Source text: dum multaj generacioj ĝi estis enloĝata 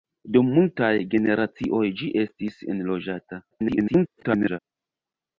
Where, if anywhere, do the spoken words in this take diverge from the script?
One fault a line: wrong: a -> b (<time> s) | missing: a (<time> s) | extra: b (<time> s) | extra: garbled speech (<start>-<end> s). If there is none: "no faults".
extra: garbled speech (3.5-4.6 s)